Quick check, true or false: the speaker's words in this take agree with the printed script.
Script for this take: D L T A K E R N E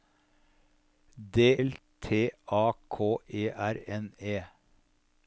true